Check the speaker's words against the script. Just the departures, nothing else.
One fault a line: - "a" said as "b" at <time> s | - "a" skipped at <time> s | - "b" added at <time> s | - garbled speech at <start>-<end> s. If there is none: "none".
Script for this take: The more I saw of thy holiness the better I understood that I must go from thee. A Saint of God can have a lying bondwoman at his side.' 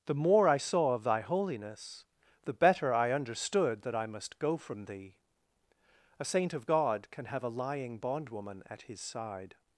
none